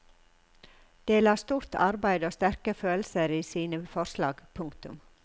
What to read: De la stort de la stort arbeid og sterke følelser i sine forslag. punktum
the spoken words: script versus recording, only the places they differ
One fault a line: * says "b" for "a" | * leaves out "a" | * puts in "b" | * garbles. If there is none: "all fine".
* leaves out "de la stort"